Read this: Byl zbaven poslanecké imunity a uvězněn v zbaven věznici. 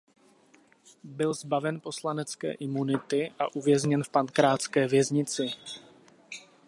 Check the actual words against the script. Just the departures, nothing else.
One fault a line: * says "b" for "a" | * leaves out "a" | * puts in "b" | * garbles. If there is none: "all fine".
* says "pankrácké" for "zbaven"